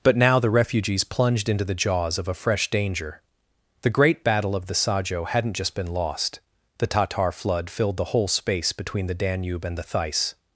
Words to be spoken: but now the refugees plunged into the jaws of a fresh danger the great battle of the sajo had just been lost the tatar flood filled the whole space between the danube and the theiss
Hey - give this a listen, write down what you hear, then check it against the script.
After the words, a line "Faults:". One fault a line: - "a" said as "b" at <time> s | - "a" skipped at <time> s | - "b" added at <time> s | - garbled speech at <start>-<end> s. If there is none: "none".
but now the refugees plunged into the jaws of a fresh danger the great battle of the sajo hadn't just been lost the tatar flood filled the whole space between the danube and the theiss
Faults:
- "had" said as "hadn't" at 5.3 s